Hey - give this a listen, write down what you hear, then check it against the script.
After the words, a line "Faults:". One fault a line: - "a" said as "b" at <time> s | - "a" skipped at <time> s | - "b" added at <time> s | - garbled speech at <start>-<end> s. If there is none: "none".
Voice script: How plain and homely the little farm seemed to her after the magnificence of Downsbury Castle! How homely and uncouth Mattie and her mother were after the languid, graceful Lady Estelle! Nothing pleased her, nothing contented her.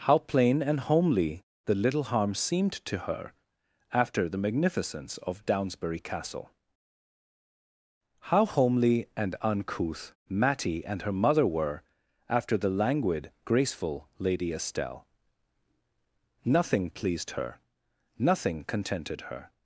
How plain and homely the little harm seemed to her after the magnificence of Downsbury Castle! How homely and uncouth Mattie and her mother were after the languid, graceful Lady Estelle! Nothing pleased her, nothing contented her.
Faults:
- "farm" said as "harm" at 2.0 s